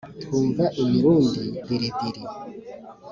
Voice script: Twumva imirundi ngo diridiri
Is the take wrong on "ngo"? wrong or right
wrong